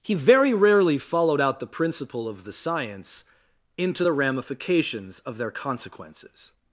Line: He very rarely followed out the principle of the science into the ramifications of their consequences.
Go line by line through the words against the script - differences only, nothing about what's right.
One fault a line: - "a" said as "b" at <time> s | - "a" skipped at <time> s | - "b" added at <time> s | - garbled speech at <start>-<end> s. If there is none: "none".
none